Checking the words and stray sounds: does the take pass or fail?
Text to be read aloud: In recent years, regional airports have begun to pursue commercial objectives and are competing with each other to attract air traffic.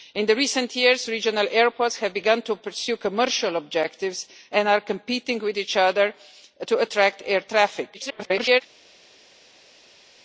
fail